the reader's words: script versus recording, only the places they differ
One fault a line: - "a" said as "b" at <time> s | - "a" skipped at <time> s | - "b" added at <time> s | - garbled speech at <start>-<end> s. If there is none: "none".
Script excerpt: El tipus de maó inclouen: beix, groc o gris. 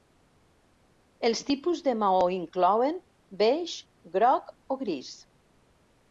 - "El" said as "Els" at 1.3 s